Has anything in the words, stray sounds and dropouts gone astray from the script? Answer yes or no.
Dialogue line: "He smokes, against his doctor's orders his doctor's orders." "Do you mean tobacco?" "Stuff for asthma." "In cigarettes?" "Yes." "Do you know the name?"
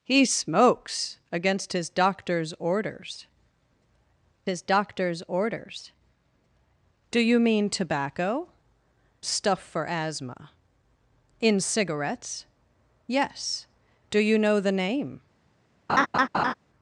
yes